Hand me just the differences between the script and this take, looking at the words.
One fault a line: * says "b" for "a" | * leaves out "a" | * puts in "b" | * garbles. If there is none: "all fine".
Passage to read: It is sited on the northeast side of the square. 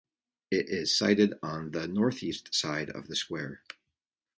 all fine